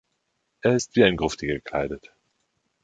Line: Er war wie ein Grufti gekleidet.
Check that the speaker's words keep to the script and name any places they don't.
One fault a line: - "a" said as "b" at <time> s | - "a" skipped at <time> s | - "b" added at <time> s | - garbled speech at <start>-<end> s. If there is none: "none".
- "war" said as "ist" at 0.7 s